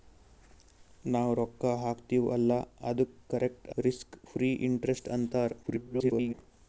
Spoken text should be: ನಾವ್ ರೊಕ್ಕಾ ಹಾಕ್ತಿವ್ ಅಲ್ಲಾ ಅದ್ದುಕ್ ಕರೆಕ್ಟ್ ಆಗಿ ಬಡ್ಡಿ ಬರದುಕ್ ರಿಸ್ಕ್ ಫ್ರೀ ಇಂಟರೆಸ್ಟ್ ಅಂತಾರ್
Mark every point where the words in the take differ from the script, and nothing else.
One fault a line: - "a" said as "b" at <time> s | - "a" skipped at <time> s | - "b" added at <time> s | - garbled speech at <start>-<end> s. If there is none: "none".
- "ಆಗಿ ಬಡ್ಡಿ ಬರದುಕ್" skipped at 3.7 s
- garbled speech at 5.6-6.3 s